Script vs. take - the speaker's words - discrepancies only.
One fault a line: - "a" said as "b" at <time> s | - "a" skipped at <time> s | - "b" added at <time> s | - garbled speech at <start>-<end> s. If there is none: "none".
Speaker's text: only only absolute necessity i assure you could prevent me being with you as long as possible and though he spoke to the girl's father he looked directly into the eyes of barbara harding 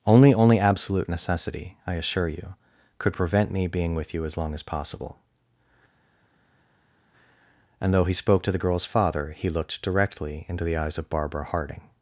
none